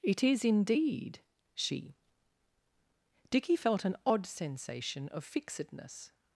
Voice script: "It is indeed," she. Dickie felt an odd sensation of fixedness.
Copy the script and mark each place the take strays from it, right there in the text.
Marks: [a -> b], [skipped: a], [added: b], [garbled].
"It is indeed," she. Dickie felt an odd sensation of fixedness.